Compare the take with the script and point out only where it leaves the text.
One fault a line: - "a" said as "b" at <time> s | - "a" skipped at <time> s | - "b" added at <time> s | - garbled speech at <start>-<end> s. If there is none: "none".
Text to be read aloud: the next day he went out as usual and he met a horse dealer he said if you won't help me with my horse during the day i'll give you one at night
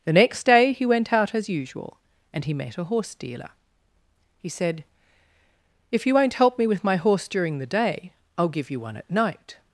none